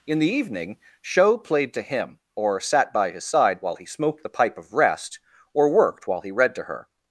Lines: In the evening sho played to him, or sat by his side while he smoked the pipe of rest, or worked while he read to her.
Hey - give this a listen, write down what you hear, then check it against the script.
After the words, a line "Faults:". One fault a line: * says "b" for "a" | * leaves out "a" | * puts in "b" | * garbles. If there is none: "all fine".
In the evening sho played to him, or sat by his side while he smoked the pipe of rest, or worked while he read to her.
Faults:
all fine